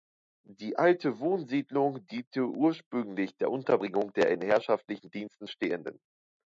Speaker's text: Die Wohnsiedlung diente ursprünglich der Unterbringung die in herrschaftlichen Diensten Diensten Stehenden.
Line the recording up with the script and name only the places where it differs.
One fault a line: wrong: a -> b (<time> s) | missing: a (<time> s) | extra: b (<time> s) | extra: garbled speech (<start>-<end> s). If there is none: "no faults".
extra: alte (0.8 s)
wrong: die -> der (4.1 s)
missing: Diensten (5.5 s)